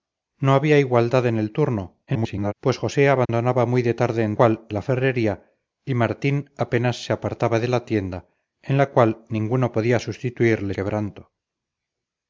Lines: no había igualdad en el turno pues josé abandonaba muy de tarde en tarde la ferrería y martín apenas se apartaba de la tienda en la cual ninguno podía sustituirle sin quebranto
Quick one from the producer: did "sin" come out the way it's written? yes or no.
no